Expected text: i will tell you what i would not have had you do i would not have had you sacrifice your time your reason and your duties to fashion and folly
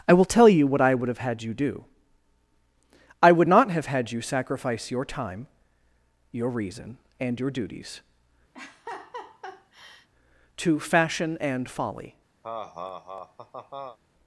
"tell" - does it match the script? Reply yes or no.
yes